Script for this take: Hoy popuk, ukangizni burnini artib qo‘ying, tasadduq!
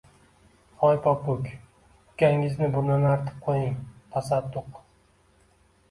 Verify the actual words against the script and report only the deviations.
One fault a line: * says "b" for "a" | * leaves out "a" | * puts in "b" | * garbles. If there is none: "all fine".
all fine